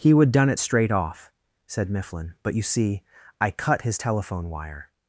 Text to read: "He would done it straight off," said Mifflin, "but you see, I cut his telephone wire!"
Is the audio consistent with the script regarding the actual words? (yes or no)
yes